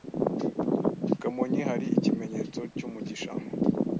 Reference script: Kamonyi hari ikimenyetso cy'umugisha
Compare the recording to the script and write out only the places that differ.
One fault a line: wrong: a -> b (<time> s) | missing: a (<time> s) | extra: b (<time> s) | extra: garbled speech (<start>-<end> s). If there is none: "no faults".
no faults